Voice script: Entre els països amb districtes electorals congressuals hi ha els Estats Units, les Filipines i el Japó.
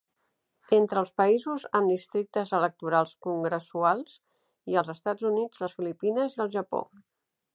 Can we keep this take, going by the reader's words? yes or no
yes